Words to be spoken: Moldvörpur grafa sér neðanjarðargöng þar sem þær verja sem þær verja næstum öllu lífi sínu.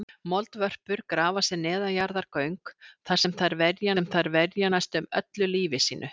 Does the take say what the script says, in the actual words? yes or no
yes